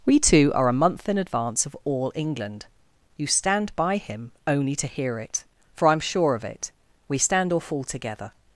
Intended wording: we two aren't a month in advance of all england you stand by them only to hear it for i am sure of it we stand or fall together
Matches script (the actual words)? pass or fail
fail